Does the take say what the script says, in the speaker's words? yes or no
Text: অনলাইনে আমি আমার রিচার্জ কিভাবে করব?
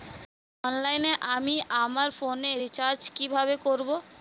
no